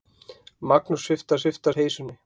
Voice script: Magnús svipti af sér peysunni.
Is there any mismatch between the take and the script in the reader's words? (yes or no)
yes